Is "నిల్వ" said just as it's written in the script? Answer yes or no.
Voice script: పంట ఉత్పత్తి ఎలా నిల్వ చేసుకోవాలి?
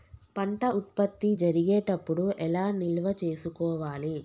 yes